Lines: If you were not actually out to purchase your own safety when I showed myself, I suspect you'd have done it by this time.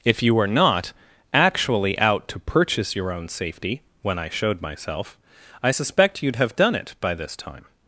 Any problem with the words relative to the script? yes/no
no